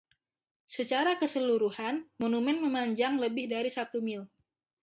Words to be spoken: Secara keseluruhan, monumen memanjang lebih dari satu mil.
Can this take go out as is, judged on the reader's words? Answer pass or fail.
pass